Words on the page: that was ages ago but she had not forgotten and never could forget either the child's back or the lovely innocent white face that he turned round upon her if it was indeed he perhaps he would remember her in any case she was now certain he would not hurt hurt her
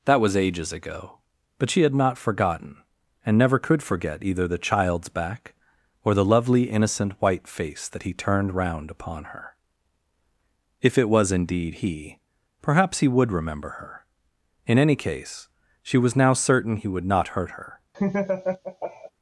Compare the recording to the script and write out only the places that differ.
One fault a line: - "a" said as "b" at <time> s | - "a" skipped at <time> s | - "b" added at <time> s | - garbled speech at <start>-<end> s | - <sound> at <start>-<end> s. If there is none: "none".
- "hurt" skipped at 17.5 s
- laugh at 17.9-19.1 s